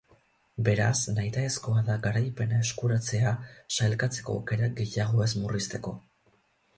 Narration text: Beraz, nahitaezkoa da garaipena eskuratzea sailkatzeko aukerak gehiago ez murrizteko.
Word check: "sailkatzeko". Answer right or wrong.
right